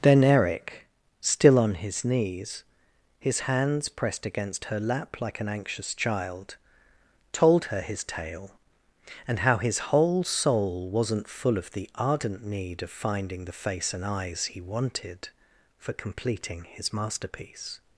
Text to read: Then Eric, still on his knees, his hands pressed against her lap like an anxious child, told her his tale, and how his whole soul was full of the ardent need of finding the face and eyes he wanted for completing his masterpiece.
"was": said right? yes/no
no